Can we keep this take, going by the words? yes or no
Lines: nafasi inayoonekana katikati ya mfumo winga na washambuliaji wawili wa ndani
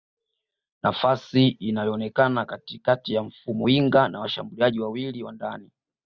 yes